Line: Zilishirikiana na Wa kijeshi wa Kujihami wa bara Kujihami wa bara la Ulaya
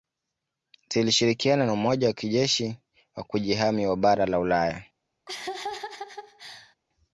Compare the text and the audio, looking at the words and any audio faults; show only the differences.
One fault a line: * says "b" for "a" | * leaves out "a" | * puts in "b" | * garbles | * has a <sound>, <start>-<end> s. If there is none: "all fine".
* puts in "Umoja"
* leaves out "Kujihami wa bara"
* has a laugh, 5.3-6.8 s